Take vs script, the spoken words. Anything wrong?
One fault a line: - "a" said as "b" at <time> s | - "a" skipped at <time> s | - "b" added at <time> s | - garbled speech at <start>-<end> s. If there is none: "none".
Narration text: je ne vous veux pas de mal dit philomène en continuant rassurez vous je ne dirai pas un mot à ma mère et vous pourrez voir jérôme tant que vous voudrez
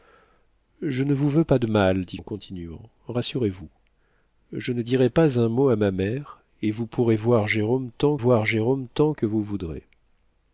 - "philomène" skipped at 2.2 s
- "voir jérôme tant" added at 8.2 s